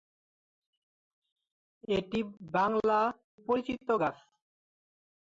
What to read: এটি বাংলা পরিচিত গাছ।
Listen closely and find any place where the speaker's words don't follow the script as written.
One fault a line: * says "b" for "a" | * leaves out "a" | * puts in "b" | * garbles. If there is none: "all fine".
all fine